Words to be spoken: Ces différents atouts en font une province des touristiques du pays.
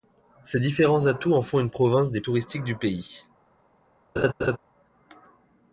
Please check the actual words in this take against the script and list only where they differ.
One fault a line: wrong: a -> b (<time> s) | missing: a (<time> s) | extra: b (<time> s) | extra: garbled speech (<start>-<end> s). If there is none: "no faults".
no faults